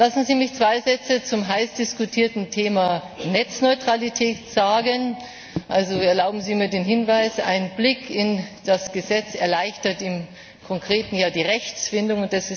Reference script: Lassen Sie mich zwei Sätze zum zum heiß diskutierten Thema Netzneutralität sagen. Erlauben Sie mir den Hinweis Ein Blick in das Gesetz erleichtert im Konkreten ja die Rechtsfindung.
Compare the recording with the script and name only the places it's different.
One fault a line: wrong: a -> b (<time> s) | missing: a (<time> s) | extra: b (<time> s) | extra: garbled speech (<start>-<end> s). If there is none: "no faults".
missing: zum (1.5 s)